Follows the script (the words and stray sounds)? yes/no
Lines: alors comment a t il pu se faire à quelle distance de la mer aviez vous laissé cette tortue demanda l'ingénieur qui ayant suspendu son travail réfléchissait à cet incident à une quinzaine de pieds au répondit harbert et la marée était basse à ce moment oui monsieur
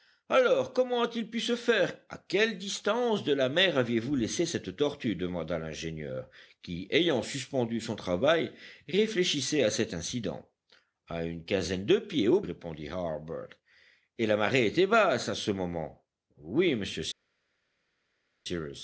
yes